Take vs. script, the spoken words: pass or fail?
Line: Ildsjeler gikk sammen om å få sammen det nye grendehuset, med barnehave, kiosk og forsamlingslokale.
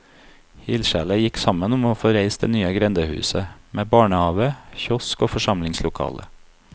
fail